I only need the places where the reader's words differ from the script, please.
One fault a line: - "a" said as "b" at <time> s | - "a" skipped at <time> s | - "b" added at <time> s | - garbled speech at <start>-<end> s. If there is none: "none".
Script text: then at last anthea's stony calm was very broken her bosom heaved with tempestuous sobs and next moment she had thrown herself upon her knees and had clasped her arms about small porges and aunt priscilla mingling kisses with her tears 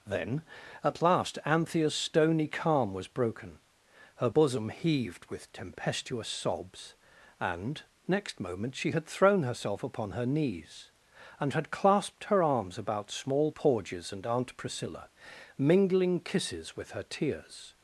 - "very" skipped at 3.1 s